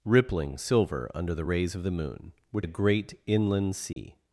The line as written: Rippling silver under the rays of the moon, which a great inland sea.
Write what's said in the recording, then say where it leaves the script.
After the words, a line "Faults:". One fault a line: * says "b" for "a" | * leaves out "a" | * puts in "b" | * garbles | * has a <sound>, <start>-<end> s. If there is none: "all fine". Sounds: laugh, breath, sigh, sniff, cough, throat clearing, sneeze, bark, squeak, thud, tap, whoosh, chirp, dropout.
Rippling silver under the rays of the moon, which a great inland sea.
Faults:
* has a dropout, 3.9-4.0 s